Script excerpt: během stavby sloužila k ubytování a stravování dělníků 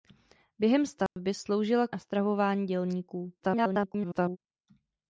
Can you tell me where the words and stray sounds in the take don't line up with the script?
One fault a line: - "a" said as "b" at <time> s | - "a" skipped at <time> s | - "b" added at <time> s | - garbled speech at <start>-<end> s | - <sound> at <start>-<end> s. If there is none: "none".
- dropout at 1.1-1.2 s
- "ubytování" skipped at 1.9 s
- garbled speech at 3.4-4.4 s